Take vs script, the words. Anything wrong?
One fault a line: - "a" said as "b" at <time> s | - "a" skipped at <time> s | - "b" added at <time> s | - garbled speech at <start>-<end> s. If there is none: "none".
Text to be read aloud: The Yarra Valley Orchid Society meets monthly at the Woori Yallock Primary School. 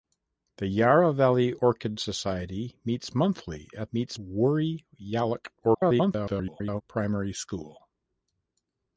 - "the" said as "meets" at 3.9 s
- garbled speech at 5.6-6.8 s